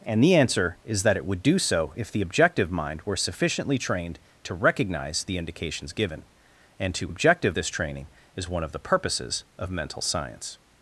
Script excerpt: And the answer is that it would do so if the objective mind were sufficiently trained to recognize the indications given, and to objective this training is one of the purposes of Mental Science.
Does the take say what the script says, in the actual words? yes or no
yes